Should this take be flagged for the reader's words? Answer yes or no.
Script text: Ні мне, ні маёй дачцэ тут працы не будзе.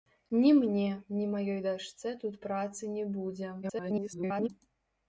yes